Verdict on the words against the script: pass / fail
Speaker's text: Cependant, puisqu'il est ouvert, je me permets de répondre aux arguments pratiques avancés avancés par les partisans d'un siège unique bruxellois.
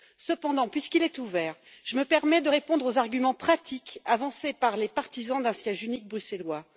fail